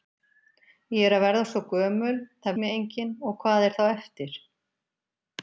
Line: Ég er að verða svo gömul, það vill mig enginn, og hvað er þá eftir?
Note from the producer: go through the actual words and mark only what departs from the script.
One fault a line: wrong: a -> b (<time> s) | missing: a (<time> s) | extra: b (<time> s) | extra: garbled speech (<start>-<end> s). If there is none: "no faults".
missing: vill (2.6 s)